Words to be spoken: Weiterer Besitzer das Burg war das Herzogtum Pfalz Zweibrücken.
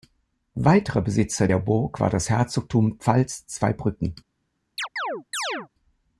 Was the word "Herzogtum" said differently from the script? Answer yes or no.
no